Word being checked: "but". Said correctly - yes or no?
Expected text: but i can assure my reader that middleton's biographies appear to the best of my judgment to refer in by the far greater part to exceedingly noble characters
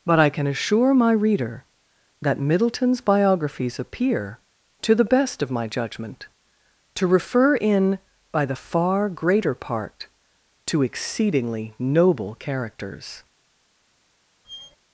yes